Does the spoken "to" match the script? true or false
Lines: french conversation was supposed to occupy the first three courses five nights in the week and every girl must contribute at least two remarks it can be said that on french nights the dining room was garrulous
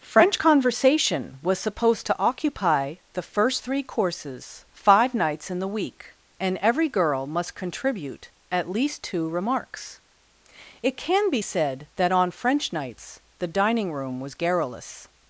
true